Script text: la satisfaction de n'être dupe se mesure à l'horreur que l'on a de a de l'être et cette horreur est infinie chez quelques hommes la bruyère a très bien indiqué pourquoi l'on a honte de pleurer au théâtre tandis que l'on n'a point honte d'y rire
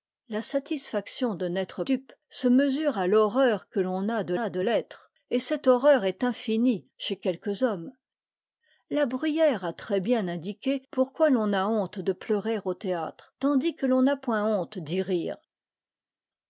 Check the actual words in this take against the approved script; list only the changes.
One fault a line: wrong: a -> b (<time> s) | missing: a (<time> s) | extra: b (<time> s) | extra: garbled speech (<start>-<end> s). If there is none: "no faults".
no faults